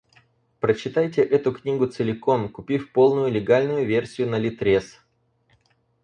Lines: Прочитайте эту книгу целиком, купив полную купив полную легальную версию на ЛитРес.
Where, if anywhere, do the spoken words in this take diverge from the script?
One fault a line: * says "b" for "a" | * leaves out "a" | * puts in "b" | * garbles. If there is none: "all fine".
* leaves out "купив полную"